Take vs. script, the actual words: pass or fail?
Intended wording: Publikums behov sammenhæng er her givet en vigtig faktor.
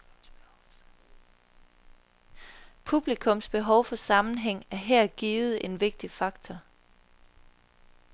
fail